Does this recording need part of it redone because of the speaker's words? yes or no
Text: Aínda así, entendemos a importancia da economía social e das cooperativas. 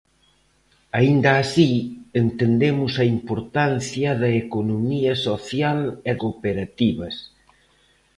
yes